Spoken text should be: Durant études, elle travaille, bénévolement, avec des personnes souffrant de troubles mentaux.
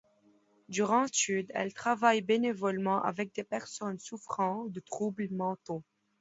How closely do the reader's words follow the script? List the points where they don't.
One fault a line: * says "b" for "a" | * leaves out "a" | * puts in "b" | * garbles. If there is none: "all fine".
all fine